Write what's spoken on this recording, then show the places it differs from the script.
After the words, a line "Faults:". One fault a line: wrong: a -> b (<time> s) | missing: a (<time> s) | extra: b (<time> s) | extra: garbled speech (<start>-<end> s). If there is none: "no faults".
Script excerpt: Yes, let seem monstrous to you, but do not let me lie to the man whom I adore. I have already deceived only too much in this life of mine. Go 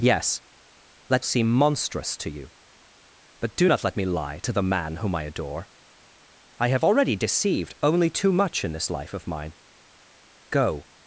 Yes, let seem monstrous to you, but do not let me lie to the man whom I adore. I have already deceived only too much in this life of mine. Go
Faults:
no faults